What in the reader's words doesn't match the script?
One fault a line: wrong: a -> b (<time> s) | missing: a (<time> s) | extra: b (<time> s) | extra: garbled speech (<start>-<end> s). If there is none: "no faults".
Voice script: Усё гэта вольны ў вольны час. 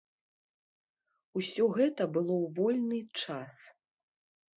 wrong: вольны -> было (2.2 s)